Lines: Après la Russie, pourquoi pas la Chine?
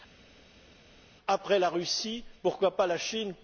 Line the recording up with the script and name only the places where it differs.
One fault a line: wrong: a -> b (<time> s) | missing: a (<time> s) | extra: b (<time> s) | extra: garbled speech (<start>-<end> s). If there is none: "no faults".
no faults